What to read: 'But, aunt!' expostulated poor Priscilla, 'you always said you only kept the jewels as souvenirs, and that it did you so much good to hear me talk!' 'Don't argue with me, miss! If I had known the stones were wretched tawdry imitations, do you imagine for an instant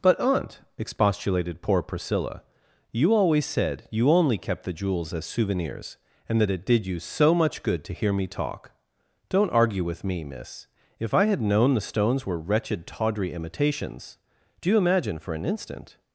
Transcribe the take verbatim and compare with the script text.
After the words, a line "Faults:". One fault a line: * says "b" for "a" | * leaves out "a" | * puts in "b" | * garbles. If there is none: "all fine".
'But, aunt!' expostulated poor Priscilla, 'you always said you only kept the jewels as souvenirs, and that it did you so much good to hear me talk!' 'Don't argue with me, miss! If I had known the stones were wretched tawdry imitations, do you imagine for an instant
Faults:
all fine